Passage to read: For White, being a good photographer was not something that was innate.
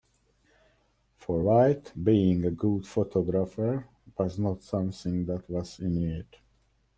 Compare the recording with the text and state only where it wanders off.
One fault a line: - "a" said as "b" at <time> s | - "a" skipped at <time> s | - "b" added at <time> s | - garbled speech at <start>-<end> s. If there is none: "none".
none